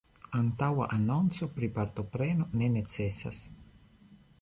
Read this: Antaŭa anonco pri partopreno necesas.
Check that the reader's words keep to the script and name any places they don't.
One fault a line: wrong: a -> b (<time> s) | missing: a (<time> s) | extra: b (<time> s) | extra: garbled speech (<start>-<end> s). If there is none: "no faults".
extra: ne (2.6 s)